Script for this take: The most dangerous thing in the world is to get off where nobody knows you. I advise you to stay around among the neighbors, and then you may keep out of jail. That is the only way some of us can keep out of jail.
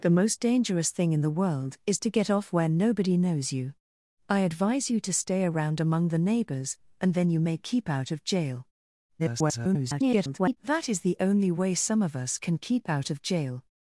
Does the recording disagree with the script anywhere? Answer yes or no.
yes